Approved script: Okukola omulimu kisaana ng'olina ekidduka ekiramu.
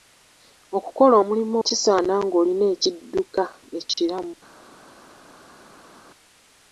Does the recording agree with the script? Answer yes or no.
yes